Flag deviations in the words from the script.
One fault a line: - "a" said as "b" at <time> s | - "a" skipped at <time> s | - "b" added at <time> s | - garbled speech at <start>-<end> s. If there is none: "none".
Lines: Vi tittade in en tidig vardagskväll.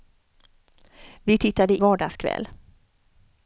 - "in en tidig" skipped at 1.8 s